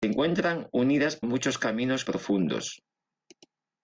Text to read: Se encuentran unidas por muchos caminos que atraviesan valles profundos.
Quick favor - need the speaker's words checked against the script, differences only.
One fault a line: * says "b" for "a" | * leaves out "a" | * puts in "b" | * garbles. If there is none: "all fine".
* leaves out "por"
* leaves out "que atraviesan valles"